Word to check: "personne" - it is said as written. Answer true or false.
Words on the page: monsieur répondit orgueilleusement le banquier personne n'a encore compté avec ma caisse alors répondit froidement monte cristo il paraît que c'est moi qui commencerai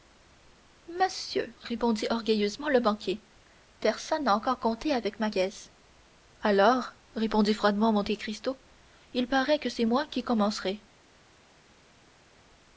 true